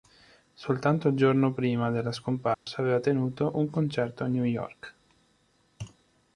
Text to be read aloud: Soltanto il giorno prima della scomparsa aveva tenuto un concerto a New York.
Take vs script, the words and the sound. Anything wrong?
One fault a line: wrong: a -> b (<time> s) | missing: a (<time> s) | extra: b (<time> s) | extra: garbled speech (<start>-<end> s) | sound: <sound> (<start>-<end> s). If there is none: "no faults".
sound: dropout (2.5-2.7 s)